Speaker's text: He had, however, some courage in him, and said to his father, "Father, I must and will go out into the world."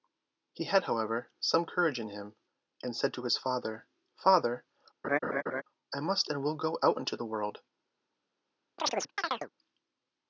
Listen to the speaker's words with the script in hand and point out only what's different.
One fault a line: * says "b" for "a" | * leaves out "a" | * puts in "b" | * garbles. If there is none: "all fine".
all fine